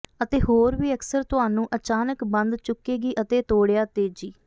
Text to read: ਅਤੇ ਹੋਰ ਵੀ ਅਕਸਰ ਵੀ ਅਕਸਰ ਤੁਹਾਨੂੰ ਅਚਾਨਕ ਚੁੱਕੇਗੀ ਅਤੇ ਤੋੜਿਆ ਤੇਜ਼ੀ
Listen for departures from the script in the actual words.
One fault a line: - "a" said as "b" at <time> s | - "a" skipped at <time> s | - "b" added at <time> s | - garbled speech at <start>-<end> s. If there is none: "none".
- "ਵੀ ਅਕਸਰ" skipped at 1.2 s
- "ਬੰਦ" added at 2.3 s